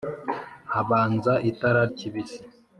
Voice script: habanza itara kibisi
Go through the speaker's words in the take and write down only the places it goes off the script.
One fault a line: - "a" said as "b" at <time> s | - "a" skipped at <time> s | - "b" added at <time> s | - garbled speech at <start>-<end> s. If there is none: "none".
none